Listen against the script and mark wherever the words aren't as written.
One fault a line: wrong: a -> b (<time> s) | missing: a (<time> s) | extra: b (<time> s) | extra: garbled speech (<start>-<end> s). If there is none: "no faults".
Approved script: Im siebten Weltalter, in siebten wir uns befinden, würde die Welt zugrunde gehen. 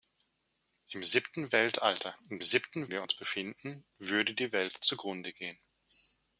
no faults